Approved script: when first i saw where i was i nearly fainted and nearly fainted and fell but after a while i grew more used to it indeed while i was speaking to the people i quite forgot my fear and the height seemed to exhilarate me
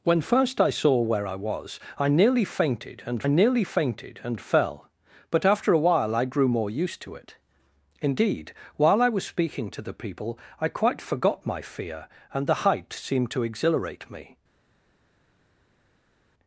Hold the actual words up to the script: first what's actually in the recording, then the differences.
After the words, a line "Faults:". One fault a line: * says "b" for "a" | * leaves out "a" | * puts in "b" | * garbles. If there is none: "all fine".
when first i saw where i was i nearly fainted and nearly fainted and fell but after a while i grew more used to it indeed while i was speaking to the people i quite forgot my fear and the height seemed to exhilarate me
Faults:
all fine